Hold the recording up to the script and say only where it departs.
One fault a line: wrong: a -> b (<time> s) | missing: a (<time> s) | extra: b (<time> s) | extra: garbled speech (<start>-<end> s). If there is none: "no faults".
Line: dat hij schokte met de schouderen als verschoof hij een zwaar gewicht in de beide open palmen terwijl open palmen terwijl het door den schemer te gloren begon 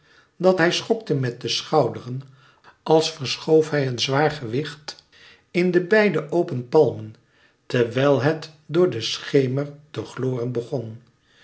missing: open palmen terwijl (8.2 s)